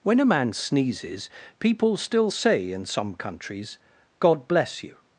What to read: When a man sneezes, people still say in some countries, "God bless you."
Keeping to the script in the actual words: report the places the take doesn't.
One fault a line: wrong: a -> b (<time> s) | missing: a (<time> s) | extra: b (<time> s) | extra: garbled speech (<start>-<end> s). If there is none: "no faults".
no faults